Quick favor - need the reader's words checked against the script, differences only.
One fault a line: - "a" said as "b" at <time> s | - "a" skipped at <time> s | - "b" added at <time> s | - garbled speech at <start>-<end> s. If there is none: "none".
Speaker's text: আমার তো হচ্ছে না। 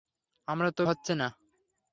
none